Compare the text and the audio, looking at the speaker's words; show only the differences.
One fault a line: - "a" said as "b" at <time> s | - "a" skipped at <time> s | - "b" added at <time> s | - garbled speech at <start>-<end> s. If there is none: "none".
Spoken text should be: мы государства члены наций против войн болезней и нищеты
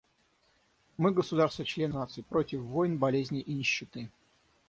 none